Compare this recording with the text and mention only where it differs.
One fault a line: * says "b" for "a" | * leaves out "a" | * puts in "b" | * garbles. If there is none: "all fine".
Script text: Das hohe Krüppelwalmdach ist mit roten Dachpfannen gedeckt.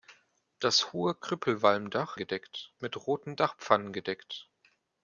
* says "gedeckt" for "ist"